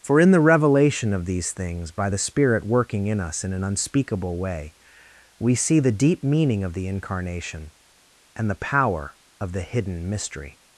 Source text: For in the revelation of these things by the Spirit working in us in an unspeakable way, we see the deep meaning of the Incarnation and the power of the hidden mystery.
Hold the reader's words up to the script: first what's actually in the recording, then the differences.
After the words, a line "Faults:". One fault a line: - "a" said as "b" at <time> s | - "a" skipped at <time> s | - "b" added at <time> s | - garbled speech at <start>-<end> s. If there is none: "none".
For in the revelation of these things by the Spirit working in us in an unspeakable way, we see the deep meaning of the Incarnation and the power of the hidden mystery.
Faults:
none